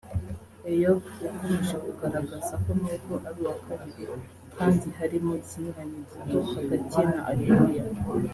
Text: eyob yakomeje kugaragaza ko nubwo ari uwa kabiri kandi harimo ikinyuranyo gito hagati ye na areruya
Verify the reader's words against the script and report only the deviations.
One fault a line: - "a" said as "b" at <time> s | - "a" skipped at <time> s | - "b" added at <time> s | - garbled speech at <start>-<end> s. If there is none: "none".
none